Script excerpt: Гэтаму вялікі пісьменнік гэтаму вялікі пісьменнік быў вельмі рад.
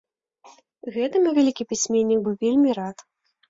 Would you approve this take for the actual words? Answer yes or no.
no